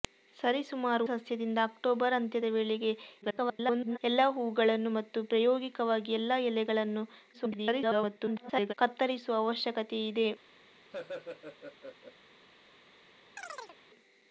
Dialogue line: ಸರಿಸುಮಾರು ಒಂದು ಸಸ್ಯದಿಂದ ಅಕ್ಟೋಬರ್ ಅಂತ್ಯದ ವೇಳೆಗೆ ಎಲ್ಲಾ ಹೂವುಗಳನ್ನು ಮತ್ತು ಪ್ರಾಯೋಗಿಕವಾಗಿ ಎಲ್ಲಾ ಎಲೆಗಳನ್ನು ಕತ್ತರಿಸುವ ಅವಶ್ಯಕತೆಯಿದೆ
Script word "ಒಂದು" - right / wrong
wrong